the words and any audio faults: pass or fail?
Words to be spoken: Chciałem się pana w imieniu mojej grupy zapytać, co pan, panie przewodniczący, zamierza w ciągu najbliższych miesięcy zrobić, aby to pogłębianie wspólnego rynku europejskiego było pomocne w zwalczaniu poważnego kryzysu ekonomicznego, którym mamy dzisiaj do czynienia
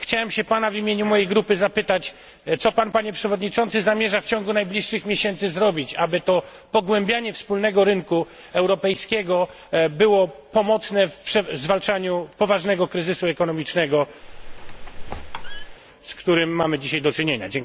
fail